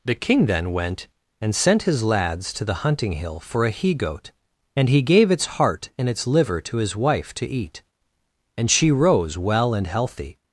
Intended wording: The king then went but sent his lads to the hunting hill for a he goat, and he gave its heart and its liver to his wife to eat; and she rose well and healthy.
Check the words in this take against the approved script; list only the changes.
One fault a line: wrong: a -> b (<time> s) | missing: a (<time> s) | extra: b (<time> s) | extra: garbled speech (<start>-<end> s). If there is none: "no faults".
wrong: but -> and (1.4 s)